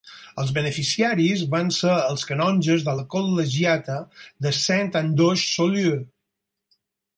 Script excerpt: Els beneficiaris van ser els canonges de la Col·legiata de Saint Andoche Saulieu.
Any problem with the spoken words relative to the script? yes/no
no